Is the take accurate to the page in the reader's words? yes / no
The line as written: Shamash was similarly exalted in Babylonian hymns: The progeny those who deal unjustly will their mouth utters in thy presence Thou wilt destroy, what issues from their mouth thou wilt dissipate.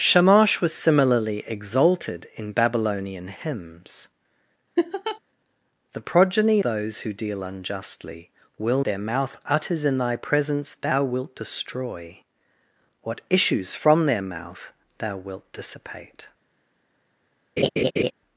yes